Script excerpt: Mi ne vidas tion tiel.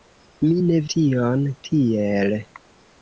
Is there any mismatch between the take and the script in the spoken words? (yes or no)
yes